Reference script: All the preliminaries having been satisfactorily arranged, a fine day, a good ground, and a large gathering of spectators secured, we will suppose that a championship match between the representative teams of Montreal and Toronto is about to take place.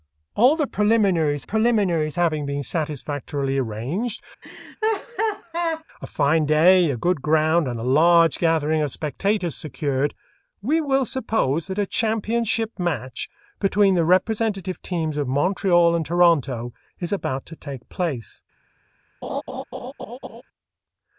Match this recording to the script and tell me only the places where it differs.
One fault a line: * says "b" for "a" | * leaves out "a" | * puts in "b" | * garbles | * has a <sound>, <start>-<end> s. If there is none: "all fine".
* puts in "preliminaries"
* has a laugh, 4.4-5.8 s
* has a laugh, 19.2-20.4 s